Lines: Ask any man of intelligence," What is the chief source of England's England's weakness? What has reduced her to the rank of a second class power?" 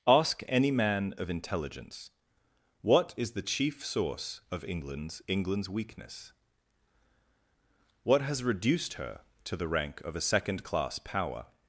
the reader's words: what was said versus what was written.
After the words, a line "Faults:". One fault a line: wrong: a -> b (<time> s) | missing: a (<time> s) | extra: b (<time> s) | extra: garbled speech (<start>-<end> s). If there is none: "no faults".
Ask any man of intelligence," What is the chief source of England's England's weakness? What has reduced her to the rank of a second class power?"
Faults:
no faults